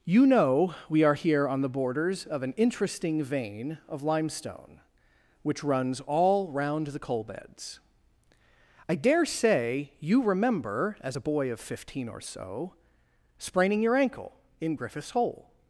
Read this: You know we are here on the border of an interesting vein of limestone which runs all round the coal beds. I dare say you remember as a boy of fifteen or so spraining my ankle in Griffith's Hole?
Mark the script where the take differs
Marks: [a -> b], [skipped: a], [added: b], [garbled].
You know we are here on the [border -> borders] of an interesting vein of limestone which runs all round the coal beds. I dare say you remember as a boy of fifteen or so spraining [my -> your] ankle in Griffith's Hole?